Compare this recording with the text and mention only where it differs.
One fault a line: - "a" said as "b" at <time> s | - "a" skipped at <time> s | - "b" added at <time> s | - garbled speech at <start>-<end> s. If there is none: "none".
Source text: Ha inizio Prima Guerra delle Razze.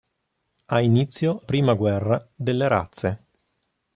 none